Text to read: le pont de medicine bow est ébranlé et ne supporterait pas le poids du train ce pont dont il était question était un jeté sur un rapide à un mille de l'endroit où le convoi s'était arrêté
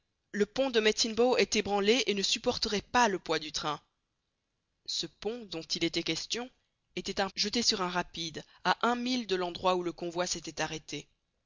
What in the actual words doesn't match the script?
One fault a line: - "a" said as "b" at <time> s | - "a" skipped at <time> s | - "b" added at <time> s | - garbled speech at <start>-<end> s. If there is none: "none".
none